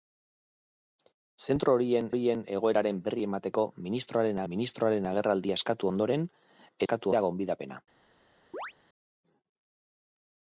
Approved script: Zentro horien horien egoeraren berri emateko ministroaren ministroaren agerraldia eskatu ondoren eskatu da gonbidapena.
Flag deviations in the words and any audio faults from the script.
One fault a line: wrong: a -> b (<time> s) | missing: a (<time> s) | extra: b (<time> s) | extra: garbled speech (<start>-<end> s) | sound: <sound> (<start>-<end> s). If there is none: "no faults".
sound: chirp (8.5-8.7 s)